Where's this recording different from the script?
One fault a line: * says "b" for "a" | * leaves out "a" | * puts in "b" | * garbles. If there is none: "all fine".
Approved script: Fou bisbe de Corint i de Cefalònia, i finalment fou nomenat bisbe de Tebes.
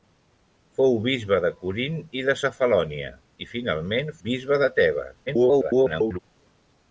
* leaves out "fou nomenat"
* garbles